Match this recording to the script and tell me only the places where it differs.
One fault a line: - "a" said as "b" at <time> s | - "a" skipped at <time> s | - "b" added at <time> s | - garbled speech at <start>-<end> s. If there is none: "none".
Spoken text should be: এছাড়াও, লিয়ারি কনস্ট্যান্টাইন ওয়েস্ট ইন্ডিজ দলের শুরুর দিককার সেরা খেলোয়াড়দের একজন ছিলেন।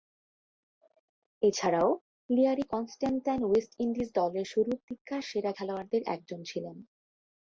none